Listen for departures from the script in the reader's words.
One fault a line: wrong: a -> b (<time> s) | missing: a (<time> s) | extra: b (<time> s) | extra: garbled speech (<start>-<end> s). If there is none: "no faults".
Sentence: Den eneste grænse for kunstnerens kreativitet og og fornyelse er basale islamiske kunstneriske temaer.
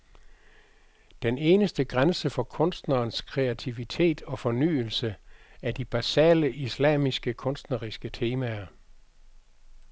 missing: og (4.4 s)
extra: de (5.7 s)